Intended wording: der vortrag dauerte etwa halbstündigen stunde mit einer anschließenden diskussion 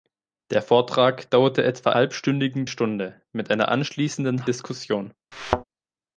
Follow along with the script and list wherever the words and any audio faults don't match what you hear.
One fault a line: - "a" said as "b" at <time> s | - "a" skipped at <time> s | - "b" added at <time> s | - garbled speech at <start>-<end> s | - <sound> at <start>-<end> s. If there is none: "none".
- thud at 5.3-5.6 s